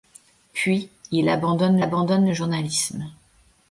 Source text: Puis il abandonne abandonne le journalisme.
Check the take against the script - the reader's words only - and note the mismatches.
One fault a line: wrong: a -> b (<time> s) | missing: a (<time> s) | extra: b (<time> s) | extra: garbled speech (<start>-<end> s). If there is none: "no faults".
no faults